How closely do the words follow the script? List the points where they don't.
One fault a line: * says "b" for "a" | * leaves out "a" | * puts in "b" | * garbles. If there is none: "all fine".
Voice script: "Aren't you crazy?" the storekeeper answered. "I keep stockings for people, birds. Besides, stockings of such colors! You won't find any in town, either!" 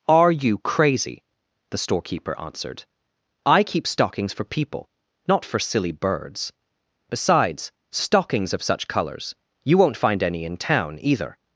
* says "Are" for "Aren't"
* puts in "not for silly"